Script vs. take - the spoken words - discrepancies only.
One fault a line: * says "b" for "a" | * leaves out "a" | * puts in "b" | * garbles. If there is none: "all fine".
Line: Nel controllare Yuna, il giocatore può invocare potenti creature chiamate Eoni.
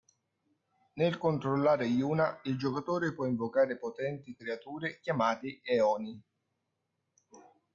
all fine